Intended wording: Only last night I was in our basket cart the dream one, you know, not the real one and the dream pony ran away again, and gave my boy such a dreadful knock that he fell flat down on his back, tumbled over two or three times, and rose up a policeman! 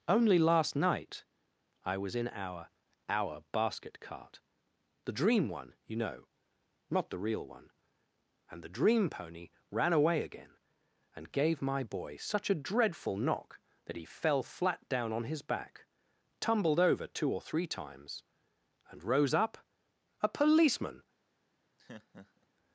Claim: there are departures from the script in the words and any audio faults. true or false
true